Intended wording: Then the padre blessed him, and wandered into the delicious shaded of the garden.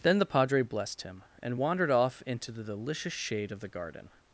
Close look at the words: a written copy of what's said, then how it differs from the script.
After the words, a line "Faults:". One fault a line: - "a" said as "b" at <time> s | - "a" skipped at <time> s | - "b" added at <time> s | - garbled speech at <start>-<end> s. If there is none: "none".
Then the padre blessed him, and wandered off into the delicious shade of the garden.
Faults:
- "off" added at 1.9 s
- "shaded" said as "shade" at 3.1 s